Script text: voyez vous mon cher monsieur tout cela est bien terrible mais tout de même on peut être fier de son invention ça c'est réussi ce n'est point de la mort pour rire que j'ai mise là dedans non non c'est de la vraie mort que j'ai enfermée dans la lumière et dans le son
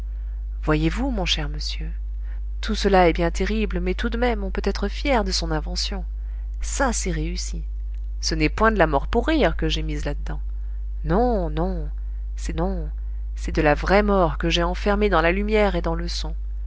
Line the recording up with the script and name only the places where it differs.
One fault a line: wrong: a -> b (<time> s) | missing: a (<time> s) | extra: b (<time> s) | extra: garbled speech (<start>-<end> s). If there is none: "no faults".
extra: non c'est (12.5 s)